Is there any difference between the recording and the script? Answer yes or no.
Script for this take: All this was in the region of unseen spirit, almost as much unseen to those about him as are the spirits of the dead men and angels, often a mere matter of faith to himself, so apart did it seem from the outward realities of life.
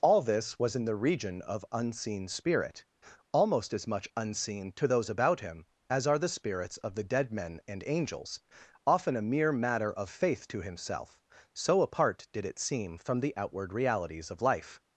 no